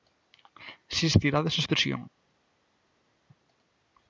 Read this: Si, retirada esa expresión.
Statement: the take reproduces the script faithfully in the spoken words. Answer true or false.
true